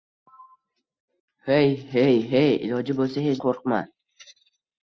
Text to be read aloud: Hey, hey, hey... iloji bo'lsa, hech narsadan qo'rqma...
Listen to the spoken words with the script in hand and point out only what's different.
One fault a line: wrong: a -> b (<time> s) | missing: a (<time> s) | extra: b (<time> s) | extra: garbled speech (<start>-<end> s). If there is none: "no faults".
missing: narsadan (3.4 s)